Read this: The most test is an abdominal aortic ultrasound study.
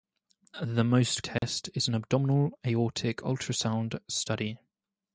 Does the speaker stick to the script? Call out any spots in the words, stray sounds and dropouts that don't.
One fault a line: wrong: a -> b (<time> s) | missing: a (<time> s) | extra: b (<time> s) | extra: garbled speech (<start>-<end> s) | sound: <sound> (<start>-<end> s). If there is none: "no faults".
sound: dropout (1.4-1.4 s)